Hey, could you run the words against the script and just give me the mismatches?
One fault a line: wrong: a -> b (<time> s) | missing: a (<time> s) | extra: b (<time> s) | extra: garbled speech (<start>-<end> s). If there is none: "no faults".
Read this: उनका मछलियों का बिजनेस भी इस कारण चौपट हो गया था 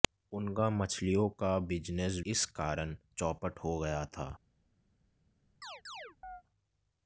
missing: भी (2.2 s)